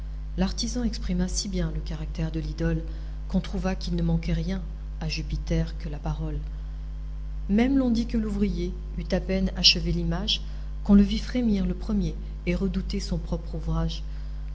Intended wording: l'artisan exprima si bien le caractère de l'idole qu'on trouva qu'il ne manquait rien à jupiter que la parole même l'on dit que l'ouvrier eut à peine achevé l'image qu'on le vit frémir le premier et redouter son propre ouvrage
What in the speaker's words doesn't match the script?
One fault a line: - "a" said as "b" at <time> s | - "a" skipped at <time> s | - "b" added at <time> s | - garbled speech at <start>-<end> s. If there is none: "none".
none